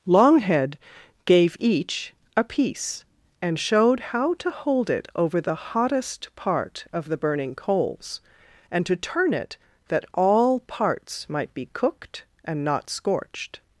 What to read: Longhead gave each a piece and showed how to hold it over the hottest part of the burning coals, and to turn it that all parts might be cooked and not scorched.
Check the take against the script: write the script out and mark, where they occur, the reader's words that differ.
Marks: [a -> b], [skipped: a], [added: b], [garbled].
Longhead gave each a piece and showed how to hold it over the hottest part of the burning coals, and to turn it that all parts might be cooked and not scorched.